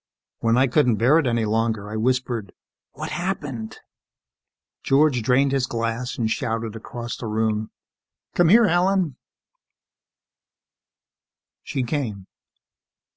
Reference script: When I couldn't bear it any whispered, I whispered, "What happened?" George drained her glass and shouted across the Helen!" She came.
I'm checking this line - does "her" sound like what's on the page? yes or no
no